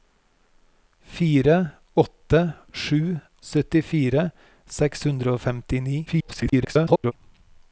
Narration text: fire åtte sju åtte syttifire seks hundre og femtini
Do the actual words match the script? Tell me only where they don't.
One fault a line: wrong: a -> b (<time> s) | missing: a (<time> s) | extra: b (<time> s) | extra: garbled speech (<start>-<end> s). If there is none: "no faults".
missing: åtte (3.2 s)
extra: garbled speech (6.1-7.1 s)